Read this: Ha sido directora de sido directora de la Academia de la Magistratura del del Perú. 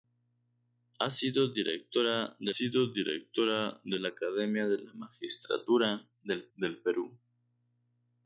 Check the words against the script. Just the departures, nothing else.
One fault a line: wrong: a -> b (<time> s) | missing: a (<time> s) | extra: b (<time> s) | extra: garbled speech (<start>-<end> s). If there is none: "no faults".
no faults